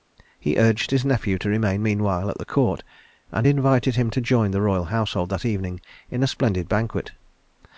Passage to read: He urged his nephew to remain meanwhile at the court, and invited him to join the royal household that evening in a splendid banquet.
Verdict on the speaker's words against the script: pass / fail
pass